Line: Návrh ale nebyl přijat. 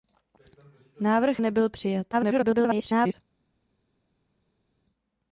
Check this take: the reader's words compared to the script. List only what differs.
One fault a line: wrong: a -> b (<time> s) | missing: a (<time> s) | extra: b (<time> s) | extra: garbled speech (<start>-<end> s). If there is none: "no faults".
missing: ale (1.4 s)
extra: garbled speech (2.1-3.1 s)